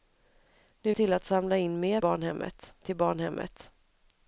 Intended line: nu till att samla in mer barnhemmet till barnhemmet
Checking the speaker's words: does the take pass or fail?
pass